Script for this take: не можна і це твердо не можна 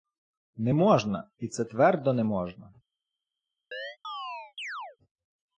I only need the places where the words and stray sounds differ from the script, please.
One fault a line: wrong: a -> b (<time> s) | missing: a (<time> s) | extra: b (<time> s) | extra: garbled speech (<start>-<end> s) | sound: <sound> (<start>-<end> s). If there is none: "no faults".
sound: chirp (3.7-5.0 s)